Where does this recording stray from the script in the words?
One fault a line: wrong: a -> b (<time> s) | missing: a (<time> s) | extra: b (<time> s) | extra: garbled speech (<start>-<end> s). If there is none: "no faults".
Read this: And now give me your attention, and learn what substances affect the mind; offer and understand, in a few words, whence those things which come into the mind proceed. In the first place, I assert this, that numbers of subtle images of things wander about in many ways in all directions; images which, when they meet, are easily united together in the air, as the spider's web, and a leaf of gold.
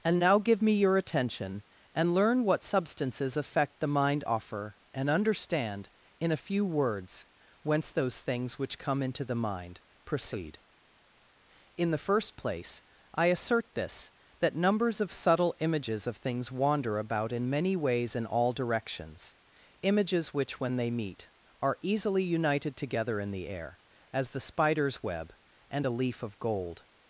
no faults